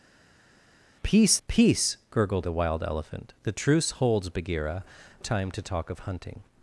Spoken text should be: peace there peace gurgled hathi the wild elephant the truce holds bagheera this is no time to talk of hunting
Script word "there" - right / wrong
wrong